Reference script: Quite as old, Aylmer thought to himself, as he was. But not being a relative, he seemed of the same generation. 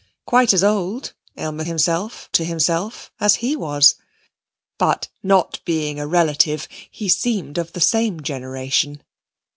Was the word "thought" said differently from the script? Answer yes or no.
yes